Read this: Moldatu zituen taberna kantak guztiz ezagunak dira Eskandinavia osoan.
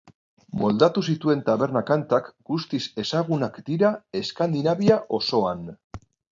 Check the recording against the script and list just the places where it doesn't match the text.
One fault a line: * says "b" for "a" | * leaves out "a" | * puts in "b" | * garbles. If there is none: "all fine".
all fine